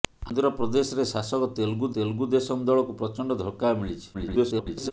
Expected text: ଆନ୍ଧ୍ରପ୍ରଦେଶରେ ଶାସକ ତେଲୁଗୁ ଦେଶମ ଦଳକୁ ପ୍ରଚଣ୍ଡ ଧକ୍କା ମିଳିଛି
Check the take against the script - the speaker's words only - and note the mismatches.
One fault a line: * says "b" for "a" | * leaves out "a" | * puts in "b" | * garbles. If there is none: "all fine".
* puts in "ତେଲୁଗୁ"
* garbles